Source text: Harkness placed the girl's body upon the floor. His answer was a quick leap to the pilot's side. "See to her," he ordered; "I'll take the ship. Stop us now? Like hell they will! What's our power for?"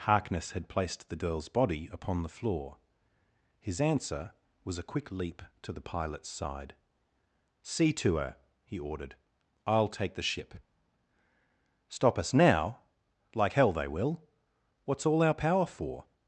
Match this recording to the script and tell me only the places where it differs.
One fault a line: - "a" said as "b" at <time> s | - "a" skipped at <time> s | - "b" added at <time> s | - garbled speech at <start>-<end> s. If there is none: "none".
- "had" added at 0.5 s
- "all" added at 15.0 s